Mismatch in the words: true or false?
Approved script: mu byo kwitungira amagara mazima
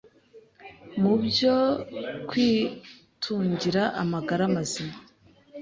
false